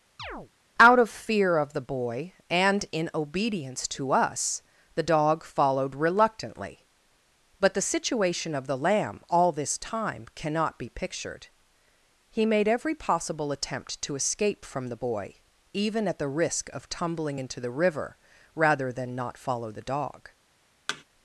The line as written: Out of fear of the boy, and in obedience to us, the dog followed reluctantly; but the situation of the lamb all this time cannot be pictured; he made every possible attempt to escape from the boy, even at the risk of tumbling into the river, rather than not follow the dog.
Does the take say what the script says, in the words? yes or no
yes